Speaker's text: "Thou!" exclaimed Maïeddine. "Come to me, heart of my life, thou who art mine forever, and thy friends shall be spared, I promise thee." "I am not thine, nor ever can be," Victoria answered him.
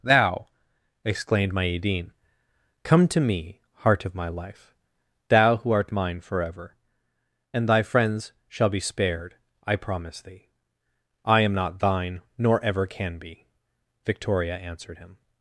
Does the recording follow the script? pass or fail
pass